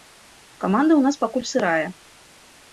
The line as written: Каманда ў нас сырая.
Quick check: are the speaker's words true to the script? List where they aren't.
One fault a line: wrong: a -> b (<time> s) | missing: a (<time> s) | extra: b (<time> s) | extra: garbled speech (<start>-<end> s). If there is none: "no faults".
extra: пакуль (1.2 s)